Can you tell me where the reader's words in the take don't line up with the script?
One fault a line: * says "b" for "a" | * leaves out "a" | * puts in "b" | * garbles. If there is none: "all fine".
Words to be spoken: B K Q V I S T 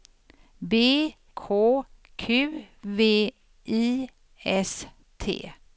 all fine